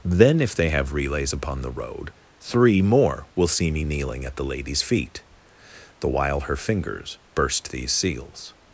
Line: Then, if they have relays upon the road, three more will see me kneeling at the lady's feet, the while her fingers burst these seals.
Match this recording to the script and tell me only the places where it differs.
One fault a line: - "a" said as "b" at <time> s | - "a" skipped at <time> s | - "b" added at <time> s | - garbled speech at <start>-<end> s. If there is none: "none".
none